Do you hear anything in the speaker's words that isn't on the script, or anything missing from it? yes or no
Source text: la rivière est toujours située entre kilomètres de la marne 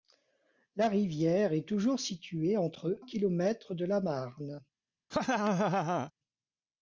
no